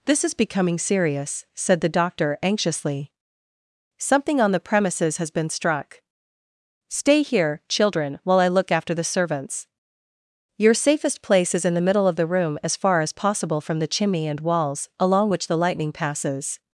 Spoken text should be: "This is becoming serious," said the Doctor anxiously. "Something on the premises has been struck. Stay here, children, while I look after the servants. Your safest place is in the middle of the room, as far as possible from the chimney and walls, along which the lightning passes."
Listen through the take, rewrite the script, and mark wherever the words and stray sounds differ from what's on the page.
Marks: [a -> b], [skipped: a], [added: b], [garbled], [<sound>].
"This is becoming serious," said the Doctor anxiously. "Something on the premises has been struck. Stay here, children, while I look after the servants. Your safest place is in the middle of the room, as far as possible from the chimney and walls, along which the lightning passes."